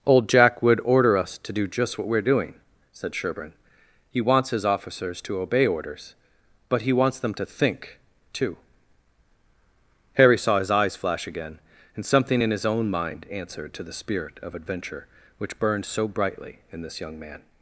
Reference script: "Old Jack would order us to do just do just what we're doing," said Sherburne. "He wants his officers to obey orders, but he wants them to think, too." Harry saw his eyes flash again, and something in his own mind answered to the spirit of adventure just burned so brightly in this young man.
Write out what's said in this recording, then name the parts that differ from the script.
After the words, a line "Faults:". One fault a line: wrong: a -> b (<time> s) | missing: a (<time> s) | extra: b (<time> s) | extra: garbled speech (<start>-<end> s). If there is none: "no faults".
"Old Jack would order us to do just what we're doing," said Sherburne. "He wants his officers to obey orders, but he wants them to think, too." Harry saw his eyes flash again, and something in his own mind answered to the spirit of adventure which burned so brightly in this young man.
Faults:
missing: do just (2.0 s)
wrong: just -> which (15.4 s)